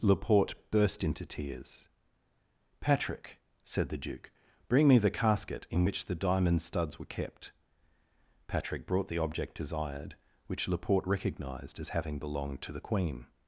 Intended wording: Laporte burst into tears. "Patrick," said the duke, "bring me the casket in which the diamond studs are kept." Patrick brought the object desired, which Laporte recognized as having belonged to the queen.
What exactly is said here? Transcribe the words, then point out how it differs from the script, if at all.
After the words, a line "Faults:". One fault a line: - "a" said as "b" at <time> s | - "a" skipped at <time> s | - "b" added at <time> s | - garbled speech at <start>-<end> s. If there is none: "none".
Laporte burst into tears. "Patrick," said the duke, "bring me the casket in which the diamond studs were kept." Patrick brought the object desired, which Laporte recognized as having belonged to the queen.
Faults:
- "are" said as "were" at 7.0 s